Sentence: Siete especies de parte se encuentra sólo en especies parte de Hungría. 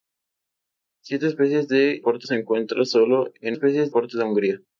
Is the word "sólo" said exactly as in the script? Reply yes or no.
yes